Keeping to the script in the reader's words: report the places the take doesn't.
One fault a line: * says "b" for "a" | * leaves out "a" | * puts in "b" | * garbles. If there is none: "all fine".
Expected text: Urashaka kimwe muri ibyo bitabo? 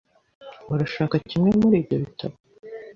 all fine